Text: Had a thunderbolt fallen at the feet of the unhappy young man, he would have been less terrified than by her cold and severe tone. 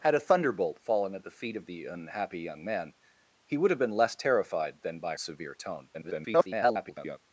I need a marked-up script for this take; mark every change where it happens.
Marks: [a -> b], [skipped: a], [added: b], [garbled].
Had a thunderbolt fallen at the feet of the unhappy young man, he would have been less terrified than by [skipped: her cold and] severe tone. [garbled]